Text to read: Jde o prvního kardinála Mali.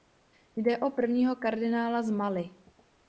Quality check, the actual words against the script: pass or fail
fail